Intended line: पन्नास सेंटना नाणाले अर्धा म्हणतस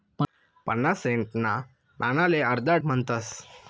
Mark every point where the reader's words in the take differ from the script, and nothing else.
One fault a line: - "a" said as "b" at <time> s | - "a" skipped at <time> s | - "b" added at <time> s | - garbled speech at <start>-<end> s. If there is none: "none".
none